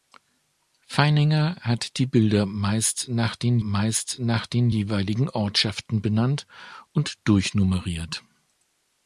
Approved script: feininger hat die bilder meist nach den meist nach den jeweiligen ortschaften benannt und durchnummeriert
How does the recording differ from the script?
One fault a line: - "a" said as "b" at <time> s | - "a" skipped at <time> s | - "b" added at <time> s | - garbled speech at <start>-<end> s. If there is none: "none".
none